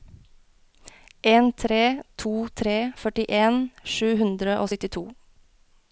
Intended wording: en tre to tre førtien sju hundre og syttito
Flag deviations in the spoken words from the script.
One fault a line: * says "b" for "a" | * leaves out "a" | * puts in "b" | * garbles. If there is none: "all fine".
all fine